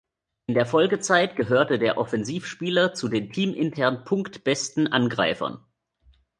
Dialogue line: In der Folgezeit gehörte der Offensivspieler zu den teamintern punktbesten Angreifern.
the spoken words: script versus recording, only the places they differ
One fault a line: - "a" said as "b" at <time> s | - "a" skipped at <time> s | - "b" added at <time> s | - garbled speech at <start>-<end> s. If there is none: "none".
none